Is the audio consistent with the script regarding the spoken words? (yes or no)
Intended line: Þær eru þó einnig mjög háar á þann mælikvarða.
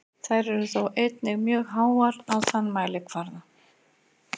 yes